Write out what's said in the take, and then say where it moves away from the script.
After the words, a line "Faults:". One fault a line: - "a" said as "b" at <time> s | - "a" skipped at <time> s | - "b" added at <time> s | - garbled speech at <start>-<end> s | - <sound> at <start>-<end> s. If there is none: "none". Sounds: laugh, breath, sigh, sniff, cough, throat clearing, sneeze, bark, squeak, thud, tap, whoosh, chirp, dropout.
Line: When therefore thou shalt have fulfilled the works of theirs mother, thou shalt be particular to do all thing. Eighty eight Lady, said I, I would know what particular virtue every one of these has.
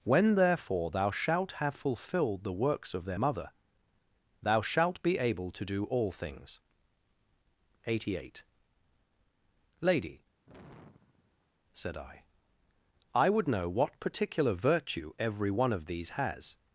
When therefore thou shalt have fulfilled the works of their mother, thou shalt be able to do all things. Eighty eight Lady, said I, I would know what particular virtue every one of these has.
Faults:
- "theirs" said as "their" at 3.0 s
- "particular" said as "able" at 5.2 s
- "thing" said as "things" at 6.1 s
- sigh at 10.4-11.5 s